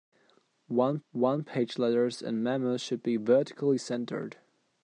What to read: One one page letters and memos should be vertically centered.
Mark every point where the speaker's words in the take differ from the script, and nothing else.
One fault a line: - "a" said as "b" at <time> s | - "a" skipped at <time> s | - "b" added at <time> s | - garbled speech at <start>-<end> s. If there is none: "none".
none